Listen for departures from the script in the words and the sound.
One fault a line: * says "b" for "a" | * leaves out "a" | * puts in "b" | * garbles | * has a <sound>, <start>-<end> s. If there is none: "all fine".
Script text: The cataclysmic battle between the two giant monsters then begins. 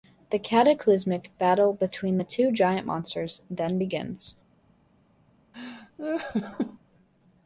* has a laugh, 5.5-6.8 s